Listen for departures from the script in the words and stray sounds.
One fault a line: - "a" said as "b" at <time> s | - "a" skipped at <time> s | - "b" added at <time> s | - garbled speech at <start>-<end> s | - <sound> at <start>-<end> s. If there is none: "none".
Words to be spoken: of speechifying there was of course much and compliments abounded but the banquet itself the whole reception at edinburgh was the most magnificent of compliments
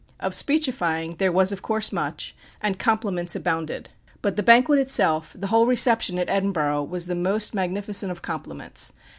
none